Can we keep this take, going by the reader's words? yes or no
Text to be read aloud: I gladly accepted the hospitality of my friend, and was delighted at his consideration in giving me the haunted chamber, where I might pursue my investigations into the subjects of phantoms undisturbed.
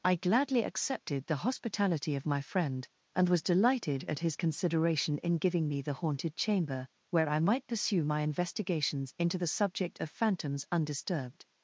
no